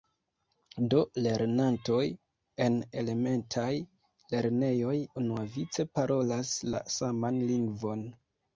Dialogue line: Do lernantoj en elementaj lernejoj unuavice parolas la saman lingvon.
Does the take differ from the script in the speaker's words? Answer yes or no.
no